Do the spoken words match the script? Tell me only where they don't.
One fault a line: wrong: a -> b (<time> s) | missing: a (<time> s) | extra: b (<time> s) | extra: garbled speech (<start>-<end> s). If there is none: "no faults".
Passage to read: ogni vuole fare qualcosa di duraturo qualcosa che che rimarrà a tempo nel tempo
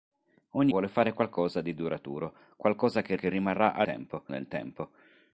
no faults